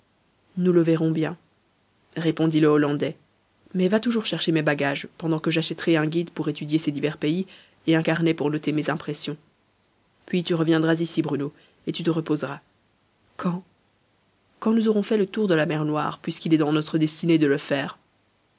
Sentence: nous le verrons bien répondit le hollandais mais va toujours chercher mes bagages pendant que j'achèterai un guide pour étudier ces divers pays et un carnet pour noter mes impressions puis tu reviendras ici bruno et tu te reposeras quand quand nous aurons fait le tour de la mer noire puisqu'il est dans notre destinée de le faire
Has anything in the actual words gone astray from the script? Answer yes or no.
no